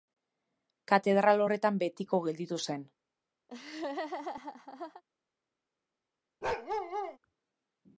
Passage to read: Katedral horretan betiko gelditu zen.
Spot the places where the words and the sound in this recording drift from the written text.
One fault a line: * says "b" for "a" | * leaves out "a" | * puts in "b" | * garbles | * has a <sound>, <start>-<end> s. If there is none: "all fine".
* has a laugh, 3.5-5.0 s
* has a bark, 6.4-7.2 s